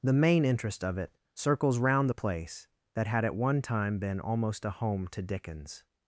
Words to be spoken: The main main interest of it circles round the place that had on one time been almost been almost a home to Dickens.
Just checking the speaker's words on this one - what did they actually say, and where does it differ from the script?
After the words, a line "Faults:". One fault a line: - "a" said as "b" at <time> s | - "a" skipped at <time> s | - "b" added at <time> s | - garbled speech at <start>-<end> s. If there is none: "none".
The main interest of it circles round the place that had at one time been almost a home to Dickens.
Faults:
- "main" skipped at 0.5 s
- "on" said as "at" at 3.2 s
- "been almost" skipped at 4.6 s